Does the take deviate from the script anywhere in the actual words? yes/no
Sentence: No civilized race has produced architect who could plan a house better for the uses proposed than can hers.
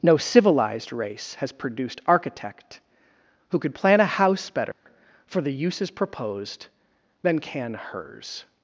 no